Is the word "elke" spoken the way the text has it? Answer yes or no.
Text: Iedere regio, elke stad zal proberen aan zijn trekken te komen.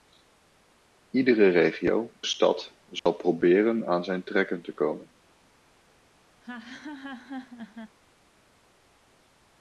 no